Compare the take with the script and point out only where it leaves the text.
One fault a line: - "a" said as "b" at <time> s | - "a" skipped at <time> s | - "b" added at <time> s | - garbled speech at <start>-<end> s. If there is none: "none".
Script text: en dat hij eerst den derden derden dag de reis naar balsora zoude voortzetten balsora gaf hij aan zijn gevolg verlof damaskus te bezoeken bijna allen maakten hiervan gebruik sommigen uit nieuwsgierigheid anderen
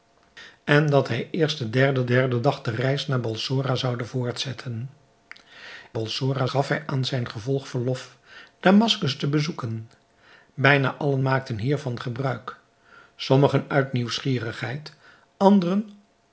none